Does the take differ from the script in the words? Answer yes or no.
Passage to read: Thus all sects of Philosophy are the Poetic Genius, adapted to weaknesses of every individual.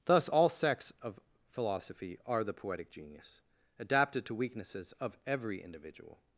no